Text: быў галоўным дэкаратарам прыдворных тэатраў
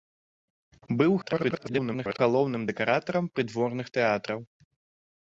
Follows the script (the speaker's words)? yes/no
no